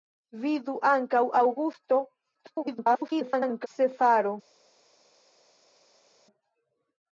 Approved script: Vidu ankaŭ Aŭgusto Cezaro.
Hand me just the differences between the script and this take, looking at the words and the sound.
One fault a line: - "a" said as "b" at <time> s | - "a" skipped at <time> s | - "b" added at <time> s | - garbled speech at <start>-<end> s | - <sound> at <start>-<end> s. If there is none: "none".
- garbled speech at 2.3-3.7 s